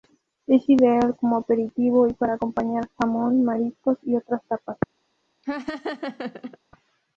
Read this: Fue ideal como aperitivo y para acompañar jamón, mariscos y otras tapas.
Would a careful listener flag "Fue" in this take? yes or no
yes